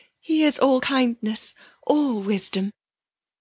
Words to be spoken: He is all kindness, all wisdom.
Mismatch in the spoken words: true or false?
false